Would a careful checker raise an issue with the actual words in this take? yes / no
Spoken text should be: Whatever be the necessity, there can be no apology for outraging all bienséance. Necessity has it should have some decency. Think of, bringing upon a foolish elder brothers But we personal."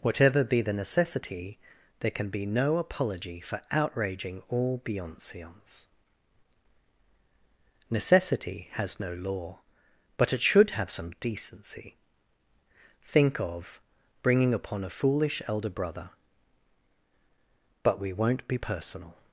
yes